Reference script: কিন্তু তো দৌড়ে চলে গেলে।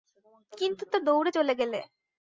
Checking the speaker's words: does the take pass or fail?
pass